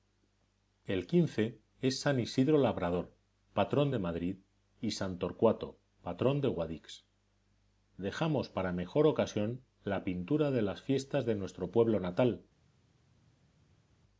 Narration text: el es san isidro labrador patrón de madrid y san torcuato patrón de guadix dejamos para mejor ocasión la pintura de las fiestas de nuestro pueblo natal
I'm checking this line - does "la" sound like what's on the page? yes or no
yes